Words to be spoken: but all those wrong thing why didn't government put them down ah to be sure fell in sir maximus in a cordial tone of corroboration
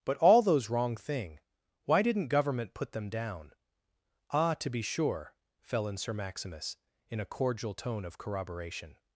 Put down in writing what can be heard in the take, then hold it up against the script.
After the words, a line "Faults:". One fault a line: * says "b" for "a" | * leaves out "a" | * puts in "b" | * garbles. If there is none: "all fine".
but all those wrong thing why didn't government put them down ah to be sure fell in sir maximus in a cordial tone of corroboration
Faults:
all fine